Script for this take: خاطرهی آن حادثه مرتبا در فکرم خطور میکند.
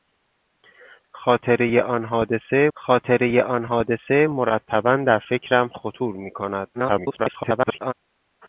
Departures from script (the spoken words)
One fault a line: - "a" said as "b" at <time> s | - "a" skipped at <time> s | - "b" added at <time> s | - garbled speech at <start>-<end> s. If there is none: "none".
- "خاطرهی آن حادثه" added at 2.7 s
- garbled speech at 6.7-7.9 s